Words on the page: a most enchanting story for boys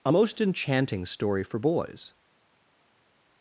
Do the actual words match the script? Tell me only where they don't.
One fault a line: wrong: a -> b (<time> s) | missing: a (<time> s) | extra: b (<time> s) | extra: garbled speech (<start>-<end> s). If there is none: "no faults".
no faults